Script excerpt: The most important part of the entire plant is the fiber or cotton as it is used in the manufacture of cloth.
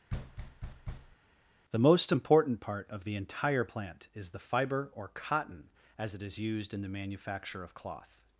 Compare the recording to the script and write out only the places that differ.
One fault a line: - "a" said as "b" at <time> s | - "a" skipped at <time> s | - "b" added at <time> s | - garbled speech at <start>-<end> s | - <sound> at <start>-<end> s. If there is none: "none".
- thud at 0.1-1.2 s